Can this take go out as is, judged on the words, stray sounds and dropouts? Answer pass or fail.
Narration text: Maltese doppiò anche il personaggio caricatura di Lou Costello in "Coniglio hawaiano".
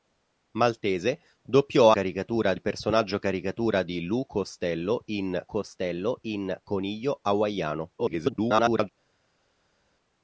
fail